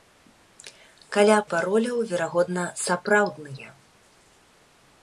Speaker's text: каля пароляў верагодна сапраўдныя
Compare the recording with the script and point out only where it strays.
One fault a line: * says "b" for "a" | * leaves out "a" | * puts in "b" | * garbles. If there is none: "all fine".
all fine